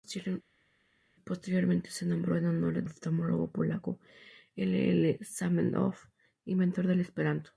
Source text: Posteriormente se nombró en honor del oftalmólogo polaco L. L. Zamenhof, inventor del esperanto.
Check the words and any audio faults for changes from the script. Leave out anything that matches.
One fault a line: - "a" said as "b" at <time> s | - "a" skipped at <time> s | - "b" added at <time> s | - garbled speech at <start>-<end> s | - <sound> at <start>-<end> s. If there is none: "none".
- "del" skipped at 2.8 s